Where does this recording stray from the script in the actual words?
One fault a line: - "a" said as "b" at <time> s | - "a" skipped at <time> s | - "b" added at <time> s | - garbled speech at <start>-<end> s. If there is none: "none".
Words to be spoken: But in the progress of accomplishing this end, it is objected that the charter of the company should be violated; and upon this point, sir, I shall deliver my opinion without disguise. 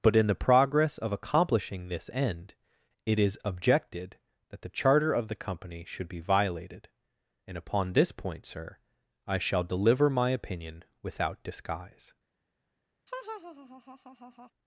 none